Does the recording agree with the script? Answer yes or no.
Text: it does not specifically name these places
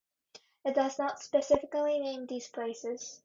yes